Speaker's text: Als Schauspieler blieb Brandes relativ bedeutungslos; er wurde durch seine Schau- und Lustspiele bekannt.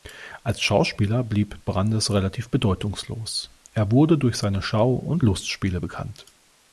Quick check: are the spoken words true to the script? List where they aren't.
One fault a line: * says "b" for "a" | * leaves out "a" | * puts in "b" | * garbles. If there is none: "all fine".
all fine